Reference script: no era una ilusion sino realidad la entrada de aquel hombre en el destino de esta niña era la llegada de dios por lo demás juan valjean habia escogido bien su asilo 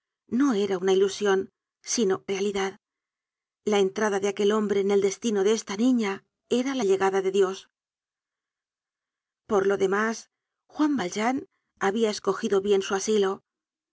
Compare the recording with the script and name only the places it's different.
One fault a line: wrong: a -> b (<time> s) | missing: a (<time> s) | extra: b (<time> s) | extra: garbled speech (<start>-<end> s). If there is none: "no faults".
no faults